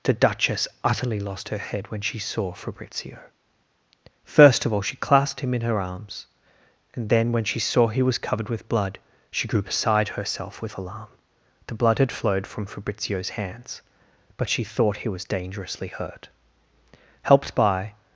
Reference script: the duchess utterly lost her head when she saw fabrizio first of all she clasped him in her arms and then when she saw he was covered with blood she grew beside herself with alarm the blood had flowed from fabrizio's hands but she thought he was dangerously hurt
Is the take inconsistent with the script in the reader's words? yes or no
yes